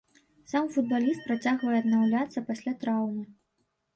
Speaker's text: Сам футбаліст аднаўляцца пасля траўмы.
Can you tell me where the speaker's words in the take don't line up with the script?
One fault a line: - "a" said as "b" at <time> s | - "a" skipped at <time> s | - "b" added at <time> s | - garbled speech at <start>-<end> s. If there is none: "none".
- "працягвае" added at 1.3 s